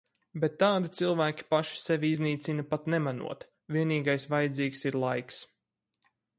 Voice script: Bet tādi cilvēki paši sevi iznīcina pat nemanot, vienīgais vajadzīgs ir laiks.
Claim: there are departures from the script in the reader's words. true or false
false